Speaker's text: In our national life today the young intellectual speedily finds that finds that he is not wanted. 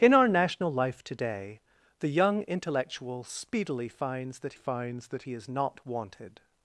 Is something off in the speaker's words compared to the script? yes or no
no